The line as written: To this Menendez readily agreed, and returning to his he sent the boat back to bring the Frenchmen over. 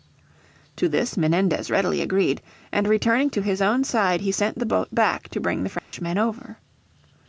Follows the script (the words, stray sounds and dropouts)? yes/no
no